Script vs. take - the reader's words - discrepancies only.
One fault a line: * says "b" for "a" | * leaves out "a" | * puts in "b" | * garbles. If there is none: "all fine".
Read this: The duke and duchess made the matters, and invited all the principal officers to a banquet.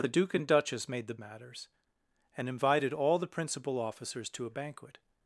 all fine